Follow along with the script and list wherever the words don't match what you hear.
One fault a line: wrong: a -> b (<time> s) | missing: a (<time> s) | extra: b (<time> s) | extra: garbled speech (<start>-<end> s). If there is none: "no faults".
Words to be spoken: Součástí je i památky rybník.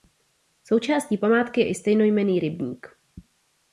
extra: památky (1.2 s)
wrong: památky -> stejnojmenný (1.8 s)